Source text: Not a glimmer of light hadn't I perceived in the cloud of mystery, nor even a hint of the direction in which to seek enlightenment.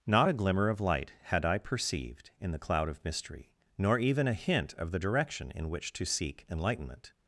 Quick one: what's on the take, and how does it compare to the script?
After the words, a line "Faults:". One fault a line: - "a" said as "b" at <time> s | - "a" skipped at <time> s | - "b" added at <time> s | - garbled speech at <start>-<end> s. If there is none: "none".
Not a glimmer of light had I perceived in the cloud of mystery, nor even a hint of the direction in which to seek enlightenment.
Faults:
- "hadn't" said as "had" at 1.2 s